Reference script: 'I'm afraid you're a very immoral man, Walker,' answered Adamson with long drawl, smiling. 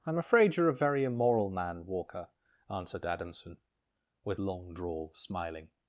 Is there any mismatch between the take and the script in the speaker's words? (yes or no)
no